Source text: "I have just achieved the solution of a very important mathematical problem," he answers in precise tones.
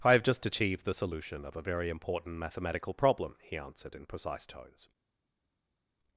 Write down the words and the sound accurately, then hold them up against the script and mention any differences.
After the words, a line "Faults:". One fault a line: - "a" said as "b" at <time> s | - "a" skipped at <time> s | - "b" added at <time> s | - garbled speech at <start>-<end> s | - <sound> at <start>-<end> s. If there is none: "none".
"I have just achieved the solution of a very important mathematical problem," he answered in precise tones.
Faults:
- "answers" said as "answered" at 3.6 s